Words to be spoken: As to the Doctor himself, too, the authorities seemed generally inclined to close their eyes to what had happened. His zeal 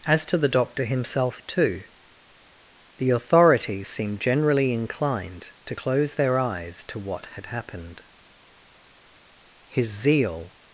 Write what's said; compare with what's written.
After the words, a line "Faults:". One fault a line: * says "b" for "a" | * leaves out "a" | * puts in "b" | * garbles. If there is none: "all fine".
As to the Doctor himself, too, the authorities seemed generally inclined to close their eyes to what had happened. His zeal
Faults:
all fine